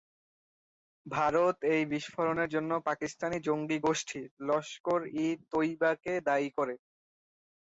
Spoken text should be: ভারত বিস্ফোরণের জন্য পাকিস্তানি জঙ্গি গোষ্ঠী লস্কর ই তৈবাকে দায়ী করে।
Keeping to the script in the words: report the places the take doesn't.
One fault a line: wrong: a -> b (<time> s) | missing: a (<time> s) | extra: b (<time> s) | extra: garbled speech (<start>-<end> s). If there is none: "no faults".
extra: এই (1.7 s)